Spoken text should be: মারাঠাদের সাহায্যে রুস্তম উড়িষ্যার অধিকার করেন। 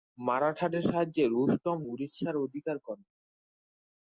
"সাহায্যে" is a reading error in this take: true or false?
false